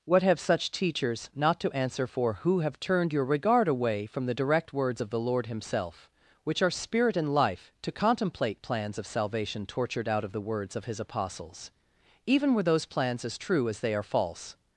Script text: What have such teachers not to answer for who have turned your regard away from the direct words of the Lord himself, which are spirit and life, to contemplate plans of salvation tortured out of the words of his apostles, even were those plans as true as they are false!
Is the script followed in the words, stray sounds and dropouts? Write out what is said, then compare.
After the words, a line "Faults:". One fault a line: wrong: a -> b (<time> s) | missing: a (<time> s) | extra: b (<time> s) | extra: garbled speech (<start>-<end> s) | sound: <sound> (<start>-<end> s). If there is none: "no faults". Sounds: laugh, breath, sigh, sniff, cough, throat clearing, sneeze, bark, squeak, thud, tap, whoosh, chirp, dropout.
What have such teachers not to answer for who have turned your regard away from the direct words of the Lord himself, which are spirit and life, to contemplate plans of salvation tortured out of the words of his apostles, even were those plans as true as they are false!
Faults:
no faults